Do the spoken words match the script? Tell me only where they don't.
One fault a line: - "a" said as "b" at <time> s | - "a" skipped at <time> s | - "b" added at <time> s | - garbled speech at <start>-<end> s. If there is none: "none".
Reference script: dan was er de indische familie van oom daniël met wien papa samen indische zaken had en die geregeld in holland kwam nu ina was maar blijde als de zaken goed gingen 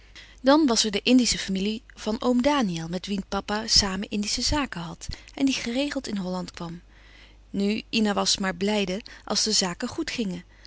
none